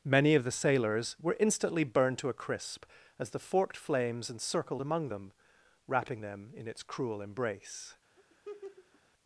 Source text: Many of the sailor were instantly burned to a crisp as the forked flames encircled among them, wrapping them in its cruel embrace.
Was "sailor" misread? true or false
true